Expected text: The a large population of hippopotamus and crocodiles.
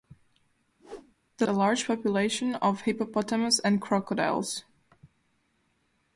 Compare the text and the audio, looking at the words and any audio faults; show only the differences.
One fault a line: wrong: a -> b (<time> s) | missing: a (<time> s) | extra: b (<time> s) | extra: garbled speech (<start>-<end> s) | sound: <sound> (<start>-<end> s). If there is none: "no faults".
sound: whoosh (0.8-1.1 s)